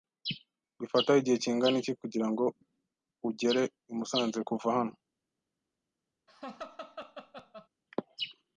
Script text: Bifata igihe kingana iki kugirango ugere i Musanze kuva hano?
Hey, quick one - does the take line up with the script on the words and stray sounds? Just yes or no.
no